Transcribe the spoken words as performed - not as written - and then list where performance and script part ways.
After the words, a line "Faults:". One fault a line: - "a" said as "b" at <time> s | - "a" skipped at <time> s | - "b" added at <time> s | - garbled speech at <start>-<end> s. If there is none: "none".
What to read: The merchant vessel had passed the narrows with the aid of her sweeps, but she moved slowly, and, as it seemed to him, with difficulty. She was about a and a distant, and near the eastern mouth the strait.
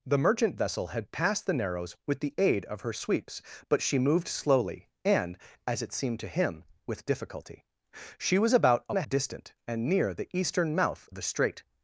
The merchant vessel had passed the narrows with the aid of her sweeps, but she moved slowly, and, as it seemed to him, with difficulty. She was about a and a distant, and near the eastern mouth the strait.
Faults:
none